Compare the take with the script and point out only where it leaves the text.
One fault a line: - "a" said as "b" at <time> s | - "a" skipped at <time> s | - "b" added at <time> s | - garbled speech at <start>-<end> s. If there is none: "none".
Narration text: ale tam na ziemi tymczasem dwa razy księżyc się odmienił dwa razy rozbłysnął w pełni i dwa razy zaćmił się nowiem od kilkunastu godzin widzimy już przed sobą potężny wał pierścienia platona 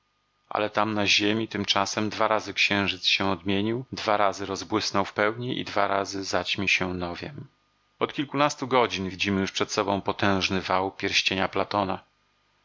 none